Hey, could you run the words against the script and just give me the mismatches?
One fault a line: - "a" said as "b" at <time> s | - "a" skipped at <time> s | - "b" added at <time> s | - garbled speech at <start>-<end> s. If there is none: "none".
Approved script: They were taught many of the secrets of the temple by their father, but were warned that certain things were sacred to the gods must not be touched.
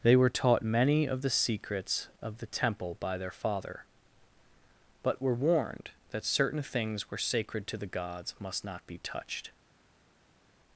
none